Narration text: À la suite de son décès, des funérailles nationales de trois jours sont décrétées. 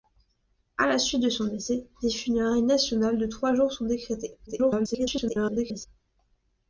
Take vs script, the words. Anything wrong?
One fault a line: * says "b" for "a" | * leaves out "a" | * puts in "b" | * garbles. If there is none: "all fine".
* garbles